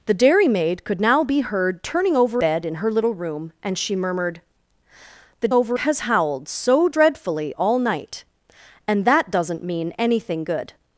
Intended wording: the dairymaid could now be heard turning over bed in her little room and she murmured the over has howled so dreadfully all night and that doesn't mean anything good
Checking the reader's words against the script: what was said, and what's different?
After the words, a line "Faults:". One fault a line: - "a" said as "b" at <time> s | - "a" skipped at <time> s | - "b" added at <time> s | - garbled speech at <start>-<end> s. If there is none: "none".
the dairymaid could now be heard turning over bed in her little room and she murmured the over has howled so dreadfully all night and that doesn't mean anything good
Faults:
none